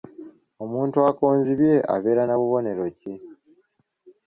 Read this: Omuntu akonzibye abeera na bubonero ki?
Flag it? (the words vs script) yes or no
no